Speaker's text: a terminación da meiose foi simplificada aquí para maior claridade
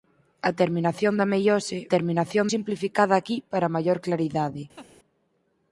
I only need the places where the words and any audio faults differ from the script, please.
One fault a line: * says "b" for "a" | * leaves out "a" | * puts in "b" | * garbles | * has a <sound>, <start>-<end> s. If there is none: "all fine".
* says "terminación" for "foi"
* has a laugh, 4.8-4.9 s